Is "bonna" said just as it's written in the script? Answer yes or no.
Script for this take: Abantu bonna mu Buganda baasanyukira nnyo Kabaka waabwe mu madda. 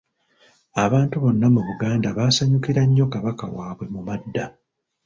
yes